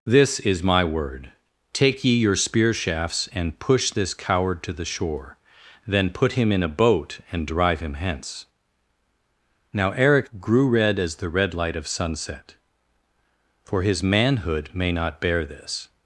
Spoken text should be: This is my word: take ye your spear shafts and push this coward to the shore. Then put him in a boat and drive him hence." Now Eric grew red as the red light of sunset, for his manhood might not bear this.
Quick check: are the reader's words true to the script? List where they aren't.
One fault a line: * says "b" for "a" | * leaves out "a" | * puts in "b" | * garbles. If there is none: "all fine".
* says "may" for "might"